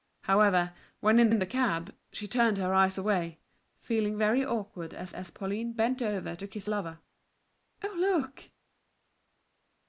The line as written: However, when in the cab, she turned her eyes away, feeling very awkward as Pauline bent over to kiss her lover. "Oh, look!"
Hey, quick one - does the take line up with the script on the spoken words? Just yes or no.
no